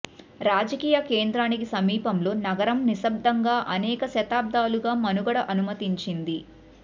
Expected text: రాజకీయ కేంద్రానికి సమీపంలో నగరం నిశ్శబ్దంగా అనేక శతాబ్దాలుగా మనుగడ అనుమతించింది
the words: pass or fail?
pass